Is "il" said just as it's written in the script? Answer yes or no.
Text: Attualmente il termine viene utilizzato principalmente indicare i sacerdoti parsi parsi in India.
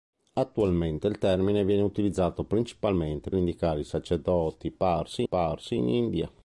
yes